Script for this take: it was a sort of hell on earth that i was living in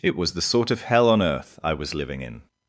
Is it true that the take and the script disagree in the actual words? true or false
true